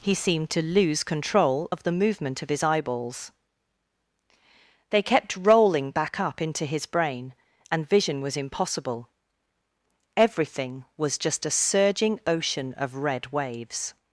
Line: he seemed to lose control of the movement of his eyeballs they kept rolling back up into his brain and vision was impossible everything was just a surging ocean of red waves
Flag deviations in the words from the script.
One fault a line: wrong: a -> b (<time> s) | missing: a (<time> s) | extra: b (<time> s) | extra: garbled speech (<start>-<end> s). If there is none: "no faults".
no faults